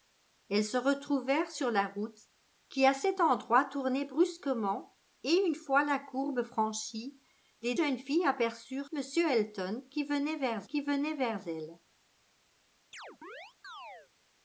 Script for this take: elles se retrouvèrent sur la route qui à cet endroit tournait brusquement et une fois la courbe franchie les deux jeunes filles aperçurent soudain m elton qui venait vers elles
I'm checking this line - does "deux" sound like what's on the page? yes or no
no